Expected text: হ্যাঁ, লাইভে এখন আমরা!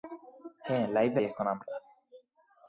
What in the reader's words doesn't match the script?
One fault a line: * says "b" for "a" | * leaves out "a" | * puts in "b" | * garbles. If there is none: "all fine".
all fine